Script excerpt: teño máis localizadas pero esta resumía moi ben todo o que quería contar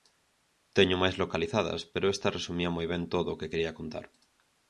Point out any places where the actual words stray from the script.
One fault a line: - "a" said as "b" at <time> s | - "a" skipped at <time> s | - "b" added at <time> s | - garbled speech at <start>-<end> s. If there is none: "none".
none